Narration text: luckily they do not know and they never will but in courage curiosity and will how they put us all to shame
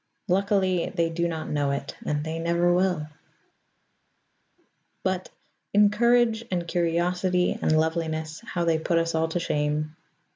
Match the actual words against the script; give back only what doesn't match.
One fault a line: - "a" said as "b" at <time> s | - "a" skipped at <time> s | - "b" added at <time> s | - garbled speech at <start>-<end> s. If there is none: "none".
- "it" added at 1.7 s
- "and" added at 6.5 s
- "will" said as "loveliness" at 7.8 s